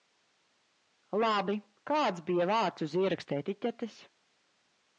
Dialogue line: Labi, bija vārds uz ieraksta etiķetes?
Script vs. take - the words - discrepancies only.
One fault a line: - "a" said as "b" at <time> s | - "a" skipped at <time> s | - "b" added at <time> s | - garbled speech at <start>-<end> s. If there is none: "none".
- "kāds" added at 1.9 s